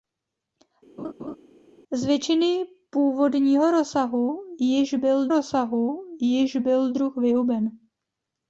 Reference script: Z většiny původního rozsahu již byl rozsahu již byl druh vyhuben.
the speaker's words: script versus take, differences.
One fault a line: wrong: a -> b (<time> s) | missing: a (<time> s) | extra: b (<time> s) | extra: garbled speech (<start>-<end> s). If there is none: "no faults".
no faults